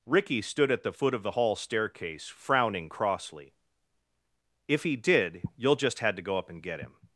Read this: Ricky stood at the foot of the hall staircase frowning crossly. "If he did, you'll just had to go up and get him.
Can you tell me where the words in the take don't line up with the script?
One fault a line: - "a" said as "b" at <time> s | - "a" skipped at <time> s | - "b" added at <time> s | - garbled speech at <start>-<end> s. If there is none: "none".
none